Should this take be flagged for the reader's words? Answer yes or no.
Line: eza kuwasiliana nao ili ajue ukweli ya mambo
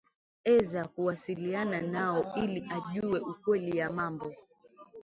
no